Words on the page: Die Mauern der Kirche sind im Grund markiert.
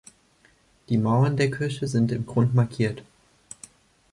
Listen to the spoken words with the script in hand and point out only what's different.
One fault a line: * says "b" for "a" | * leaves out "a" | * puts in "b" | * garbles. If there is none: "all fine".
all fine